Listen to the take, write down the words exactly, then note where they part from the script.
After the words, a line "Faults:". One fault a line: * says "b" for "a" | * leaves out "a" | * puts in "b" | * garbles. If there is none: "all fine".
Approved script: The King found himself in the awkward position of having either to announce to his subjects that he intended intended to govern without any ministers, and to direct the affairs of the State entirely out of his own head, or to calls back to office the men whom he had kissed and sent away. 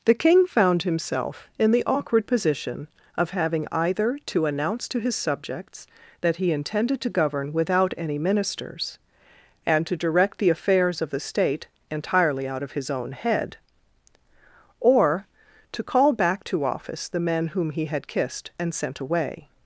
The King found himself in the awkward position of having either to announce to his subjects that he intended to govern without any ministers, and to direct the affairs of the State entirely out of his own head, or to call back to office the men whom he had kissed and sent away.
Faults:
* leaves out "intended"
* says "call" for "calls"